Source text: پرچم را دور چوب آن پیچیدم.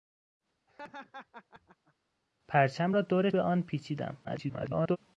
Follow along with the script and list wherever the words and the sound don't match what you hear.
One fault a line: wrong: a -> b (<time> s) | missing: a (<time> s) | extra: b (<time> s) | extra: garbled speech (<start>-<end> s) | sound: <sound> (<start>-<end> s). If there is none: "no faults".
sound: laugh (0.7-1.9 s)
missing: چوب (3.3 s)
extra: garbled speech (4.2-5.0 s)